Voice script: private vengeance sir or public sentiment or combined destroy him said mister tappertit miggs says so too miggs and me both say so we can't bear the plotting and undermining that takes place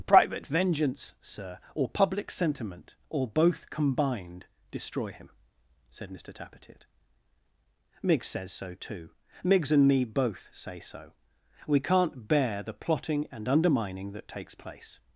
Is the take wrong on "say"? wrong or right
right